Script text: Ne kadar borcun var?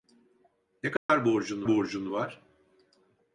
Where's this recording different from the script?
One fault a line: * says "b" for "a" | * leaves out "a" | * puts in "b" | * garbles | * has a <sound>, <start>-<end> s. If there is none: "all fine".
* has a dropout, 1.0-1.1 s
* puts in "borcun"